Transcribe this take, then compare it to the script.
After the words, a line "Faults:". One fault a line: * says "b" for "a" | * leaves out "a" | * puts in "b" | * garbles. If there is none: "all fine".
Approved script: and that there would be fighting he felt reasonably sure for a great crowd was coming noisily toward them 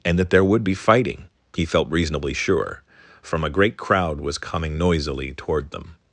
and that there would be fighting he felt reasonably sure from a great crowd was coming noisily toward them
Faults:
* says "from" for "for"